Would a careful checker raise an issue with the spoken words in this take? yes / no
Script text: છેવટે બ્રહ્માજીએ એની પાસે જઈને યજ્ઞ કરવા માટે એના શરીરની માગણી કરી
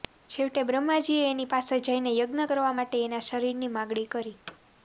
no